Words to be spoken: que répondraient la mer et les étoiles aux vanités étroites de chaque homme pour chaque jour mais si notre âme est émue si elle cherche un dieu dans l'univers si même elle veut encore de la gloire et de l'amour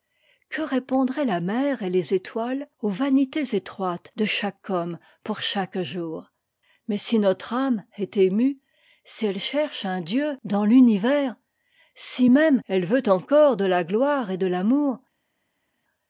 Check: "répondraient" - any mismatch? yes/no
no